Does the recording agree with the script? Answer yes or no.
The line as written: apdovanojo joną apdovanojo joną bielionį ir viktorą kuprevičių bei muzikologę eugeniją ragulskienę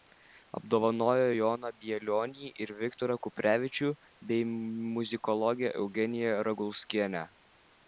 no